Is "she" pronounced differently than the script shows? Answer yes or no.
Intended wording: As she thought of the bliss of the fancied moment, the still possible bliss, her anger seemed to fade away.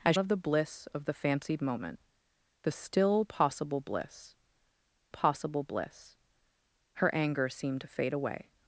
yes